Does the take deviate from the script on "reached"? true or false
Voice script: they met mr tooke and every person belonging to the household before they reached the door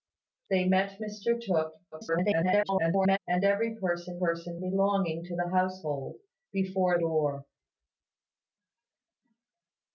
true